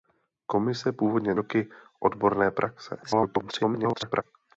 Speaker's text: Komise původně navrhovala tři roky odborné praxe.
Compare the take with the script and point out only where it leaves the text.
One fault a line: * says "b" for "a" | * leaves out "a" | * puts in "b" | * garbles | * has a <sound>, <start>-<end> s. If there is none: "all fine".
* leaves out "navrhovala tři"
* garbles